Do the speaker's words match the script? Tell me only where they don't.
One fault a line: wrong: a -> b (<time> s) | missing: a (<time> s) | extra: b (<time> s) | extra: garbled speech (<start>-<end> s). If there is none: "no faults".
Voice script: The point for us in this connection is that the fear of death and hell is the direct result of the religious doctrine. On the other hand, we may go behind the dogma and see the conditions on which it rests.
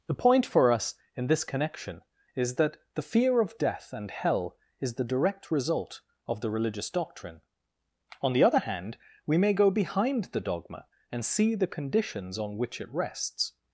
no faults